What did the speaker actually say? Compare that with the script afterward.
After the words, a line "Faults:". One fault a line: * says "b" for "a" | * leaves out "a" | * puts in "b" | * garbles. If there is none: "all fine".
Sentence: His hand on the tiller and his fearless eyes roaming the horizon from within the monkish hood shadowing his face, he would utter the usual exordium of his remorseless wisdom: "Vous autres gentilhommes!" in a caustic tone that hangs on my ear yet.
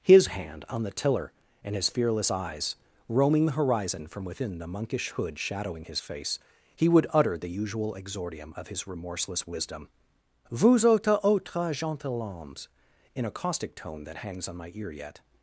His hand on the tiller and his fearless eyes roaming the horizon from within the monkish hood shadowing his face, he would utter the usual exordium of his remorseless wisdom: "Vous autres autres gentilhommes!" in a caustic tone that hangs on my ear yet.
Faults:
* puts in "autres"